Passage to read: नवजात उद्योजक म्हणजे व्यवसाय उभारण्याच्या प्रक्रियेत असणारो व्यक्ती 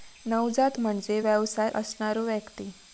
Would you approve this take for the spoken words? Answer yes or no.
no